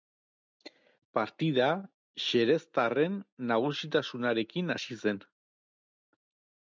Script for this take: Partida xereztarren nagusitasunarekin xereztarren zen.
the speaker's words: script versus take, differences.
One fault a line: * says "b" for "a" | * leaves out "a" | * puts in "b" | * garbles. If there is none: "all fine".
* says "hasi" for "xereztarren"